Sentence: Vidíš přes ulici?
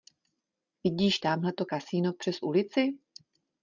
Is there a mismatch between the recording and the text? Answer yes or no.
yes